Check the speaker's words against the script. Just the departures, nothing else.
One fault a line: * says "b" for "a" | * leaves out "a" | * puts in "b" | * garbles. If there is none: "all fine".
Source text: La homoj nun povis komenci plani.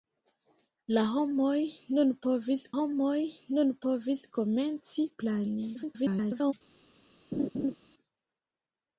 * puts in "homoj nun povis"
* garbles